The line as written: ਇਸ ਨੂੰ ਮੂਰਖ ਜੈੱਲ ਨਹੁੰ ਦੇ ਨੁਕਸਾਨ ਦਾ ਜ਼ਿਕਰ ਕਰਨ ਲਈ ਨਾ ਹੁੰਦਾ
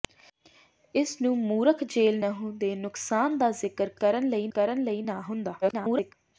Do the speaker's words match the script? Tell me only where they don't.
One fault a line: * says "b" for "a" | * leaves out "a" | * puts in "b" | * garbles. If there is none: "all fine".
* puts in "ਕਰਨ ਲਈ"
* garbles